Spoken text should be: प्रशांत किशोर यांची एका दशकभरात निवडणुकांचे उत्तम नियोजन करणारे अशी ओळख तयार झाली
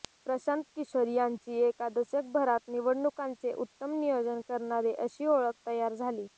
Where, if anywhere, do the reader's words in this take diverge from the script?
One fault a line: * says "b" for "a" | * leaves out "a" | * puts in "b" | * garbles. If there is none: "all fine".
all fine